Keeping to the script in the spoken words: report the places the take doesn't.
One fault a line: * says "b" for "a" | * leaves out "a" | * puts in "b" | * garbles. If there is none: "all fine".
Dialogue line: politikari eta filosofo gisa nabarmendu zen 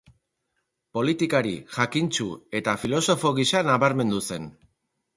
* puts in "jakintsu"